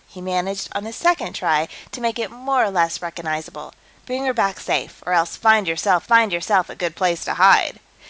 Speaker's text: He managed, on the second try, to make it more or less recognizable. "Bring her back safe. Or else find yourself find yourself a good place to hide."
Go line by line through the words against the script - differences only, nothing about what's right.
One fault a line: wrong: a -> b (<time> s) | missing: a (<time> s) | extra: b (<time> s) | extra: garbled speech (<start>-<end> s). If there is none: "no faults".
no faults